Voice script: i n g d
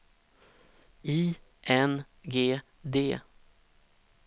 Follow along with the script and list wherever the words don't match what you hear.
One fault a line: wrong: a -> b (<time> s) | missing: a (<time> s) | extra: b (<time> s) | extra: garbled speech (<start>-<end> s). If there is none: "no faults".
no faults